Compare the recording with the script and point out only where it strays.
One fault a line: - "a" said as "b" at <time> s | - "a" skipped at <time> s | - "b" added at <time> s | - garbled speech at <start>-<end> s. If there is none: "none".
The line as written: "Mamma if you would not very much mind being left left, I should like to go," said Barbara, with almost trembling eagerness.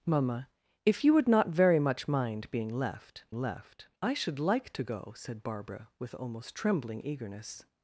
none